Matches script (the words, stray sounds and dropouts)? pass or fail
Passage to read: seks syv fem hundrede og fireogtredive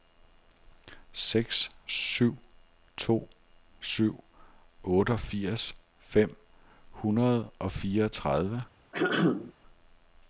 fail